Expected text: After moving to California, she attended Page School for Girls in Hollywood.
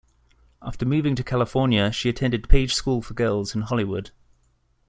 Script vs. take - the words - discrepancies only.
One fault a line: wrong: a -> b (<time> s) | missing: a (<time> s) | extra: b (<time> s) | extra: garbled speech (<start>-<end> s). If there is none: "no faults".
no faults